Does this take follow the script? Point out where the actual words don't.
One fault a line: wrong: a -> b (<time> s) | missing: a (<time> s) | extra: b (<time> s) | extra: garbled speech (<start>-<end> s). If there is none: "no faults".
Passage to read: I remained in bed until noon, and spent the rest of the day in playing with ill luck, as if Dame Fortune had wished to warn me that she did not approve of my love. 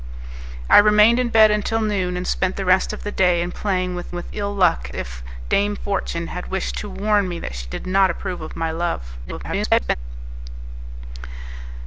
extra: with (4.1 s)
missing: as (4.9 s)
extra: garbled speech (9.2-10.0 s)